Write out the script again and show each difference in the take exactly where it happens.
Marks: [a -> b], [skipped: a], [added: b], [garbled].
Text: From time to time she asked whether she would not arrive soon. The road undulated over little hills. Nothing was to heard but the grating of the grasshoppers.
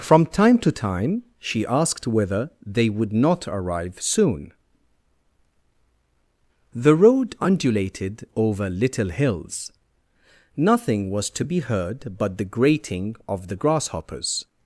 From time to time she asked whether [she -> they] would not arrive soon. The road undulated over little hills. Nothing was to [added: be] heard but the grating of the grasshoppers.